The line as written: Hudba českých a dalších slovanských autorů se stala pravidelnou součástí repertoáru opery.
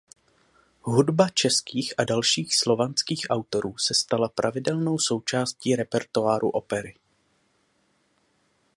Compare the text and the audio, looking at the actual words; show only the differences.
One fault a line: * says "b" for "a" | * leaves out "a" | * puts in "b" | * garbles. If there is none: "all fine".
all fine